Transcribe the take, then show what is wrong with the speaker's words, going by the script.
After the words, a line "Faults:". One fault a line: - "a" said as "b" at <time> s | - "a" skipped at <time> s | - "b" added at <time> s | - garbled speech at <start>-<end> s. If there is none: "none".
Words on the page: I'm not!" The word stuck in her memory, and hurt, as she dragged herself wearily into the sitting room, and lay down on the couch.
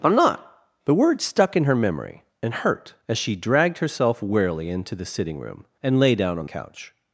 I'm not!" The word stuck in her memory, and hurt, as she dragged herself wearily into the sitting room, and lay down on couch.
Faults:
- "the" skipped at 6.5 s